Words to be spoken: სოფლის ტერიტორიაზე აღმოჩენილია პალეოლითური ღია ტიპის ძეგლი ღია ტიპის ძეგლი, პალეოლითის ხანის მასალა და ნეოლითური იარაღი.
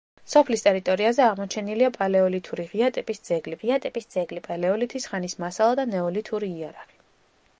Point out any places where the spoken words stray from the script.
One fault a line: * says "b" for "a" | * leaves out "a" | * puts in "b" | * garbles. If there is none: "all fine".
all fine